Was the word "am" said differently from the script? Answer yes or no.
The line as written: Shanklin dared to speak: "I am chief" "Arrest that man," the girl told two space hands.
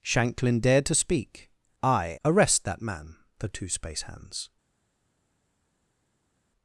yes